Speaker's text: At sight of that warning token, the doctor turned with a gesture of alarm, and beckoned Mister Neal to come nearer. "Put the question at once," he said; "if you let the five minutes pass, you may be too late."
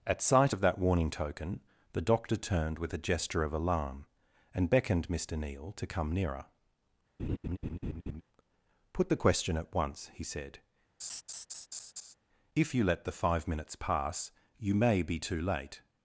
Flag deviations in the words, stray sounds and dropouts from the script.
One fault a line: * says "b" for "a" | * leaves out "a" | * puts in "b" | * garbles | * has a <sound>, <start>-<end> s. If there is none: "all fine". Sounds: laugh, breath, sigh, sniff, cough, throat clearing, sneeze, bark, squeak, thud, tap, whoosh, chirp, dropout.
* has a laugh, 7.2-8.2 s
* has a laugh, 11.0-12.1 s